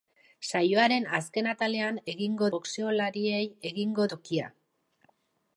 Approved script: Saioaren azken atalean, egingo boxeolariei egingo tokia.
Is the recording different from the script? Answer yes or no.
no